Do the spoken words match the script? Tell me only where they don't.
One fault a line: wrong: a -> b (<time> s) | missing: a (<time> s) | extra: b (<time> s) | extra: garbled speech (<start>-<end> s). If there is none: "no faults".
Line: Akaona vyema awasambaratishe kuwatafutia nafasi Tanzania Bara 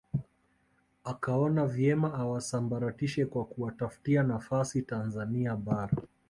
extra: kwa (3.2 s)